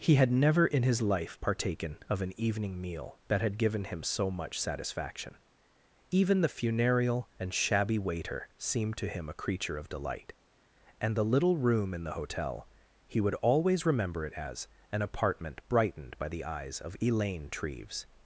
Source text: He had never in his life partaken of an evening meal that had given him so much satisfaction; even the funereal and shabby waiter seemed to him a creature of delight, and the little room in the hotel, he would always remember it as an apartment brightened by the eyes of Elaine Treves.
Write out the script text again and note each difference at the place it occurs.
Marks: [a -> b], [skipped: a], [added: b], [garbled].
He had never in his life partaken of an evening meal that had given him so much satisfaction; even the funereal and shabby waiter seemed to him a creature of delight, and the little room in the hotel, he would always remember it as an apartment brightened by the eyes of Elaine Treves.